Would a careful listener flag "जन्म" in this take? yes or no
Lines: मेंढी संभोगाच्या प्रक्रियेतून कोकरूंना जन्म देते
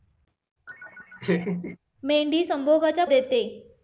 yes